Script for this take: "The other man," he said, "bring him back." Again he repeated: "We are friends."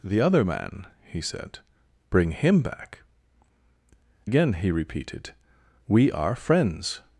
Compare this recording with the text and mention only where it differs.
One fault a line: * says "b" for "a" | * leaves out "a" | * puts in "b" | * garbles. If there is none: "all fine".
all fine